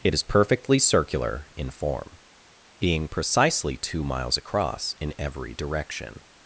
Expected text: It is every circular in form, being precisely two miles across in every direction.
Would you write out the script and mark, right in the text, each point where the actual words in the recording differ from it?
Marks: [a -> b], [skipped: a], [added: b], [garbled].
It is [every -> perfectly] circular in form, being precisely two miles across in every direction.